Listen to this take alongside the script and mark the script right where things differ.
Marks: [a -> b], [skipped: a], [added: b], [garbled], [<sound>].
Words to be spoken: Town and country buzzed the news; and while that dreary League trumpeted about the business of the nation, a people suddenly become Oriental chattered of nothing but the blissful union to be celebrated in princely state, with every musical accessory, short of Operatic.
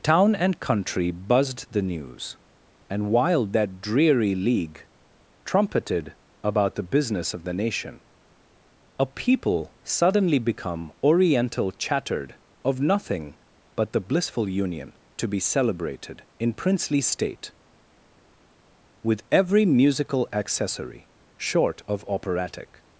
Town and country buzzed the news; and while that dreary League trumpeted about the business of the nation, a people suddenly become Oriental chattered of nothing but the blissful union to be celebrated in princely state, with every musical accessory, short of Operatic.